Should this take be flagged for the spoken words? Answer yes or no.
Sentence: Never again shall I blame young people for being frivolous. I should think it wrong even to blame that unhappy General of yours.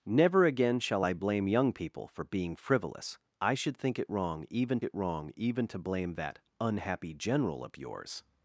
yes